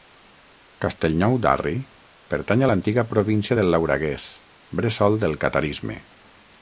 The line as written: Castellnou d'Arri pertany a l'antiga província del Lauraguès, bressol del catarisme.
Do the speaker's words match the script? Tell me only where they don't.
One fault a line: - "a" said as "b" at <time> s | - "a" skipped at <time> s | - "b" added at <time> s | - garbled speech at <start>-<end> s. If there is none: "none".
none